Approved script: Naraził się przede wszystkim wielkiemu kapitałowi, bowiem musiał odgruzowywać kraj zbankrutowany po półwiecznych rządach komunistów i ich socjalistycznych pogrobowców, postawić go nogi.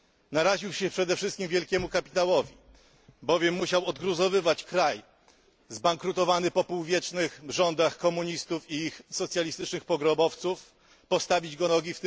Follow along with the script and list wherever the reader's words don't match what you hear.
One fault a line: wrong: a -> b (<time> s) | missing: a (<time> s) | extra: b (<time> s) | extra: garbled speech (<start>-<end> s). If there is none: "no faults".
no faults